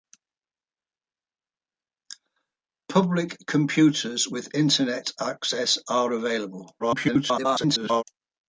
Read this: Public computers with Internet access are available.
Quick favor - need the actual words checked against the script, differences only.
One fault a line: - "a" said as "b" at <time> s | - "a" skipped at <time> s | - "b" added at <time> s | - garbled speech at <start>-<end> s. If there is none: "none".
- garbled speech at 6.8-8.0 s